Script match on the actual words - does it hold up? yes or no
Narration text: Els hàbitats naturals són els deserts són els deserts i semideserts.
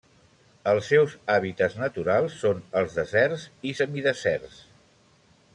no